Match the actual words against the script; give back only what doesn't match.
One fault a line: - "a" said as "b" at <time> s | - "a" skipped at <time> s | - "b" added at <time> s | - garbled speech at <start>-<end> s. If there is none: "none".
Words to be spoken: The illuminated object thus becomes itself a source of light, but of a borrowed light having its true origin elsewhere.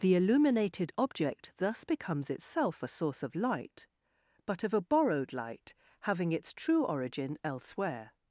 none